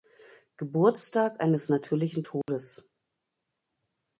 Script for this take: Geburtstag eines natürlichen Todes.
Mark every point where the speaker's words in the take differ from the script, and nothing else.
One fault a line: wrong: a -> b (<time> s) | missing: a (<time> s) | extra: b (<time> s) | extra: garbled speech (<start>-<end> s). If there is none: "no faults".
no faults